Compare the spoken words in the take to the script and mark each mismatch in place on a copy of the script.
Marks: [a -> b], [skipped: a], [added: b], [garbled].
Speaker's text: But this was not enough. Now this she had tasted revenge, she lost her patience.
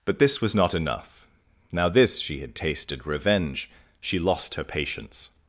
But this was not enough. Now this she had tasted revenge, she lost her patience.